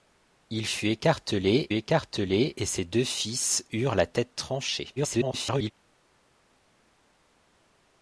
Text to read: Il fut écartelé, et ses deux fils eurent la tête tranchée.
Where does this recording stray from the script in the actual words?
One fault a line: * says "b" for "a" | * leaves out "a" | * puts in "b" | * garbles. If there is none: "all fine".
* puts in "écartelé"
* garbles